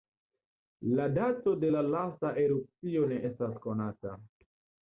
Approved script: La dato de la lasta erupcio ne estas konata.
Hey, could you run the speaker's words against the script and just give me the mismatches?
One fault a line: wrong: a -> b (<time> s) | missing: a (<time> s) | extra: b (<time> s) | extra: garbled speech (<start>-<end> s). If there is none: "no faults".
no faults